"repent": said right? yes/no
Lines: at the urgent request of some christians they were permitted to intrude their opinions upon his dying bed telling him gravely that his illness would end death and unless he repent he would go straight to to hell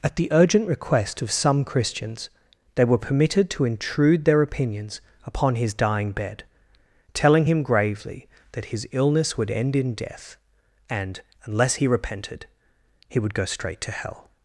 no